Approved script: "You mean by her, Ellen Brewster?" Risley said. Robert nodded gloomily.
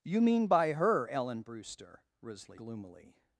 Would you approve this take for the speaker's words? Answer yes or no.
no